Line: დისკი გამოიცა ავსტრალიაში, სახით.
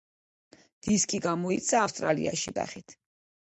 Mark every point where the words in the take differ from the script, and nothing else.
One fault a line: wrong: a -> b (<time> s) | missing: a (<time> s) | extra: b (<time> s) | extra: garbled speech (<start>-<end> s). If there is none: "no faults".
no faults